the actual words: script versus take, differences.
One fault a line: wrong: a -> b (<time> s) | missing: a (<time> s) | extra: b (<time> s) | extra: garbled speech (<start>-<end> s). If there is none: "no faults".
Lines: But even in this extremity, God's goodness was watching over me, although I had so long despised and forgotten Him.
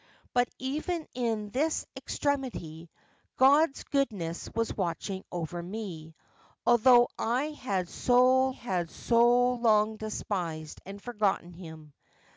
extra: had so (8.5 s)